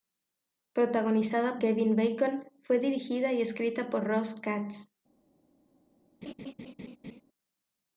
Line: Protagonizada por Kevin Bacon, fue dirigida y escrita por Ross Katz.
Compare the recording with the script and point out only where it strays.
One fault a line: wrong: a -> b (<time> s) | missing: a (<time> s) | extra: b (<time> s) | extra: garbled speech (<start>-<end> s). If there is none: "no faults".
missing: por (1.6 s)